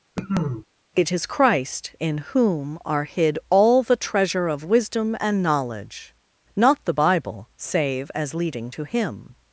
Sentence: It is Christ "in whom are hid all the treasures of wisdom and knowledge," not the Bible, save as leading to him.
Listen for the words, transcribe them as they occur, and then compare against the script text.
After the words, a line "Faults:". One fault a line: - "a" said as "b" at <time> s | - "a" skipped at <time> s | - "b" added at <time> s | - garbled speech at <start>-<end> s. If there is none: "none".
It is Christ "in whom are hid all the treasure of wisdom and knowledge," not the Bible, save as leading to him.
Faults:
- "treasures" said as "treasure" at 4.0 s